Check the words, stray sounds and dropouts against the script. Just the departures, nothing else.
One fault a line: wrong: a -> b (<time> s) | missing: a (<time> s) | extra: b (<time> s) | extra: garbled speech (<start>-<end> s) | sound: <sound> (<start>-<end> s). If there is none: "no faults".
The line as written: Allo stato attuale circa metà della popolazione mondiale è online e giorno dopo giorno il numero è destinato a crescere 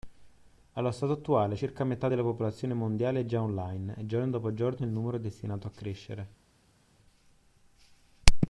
extra: già (3.2 s)